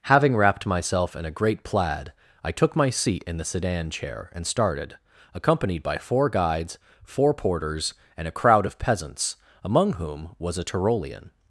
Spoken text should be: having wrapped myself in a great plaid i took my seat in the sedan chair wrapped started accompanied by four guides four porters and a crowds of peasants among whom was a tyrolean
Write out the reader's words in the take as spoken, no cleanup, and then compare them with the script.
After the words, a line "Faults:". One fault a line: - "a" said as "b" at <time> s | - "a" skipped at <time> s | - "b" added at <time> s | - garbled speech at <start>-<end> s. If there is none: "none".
having wrapped myself in a great plaid i took my seat in the sedan chair and started accompanied by four guides four porters and a crowd of peasants among whom was a tyrolean
Faults:
- "wrapped" said as "and" at 4.3 s
- "crowds" said as "crowd" at 8.4 s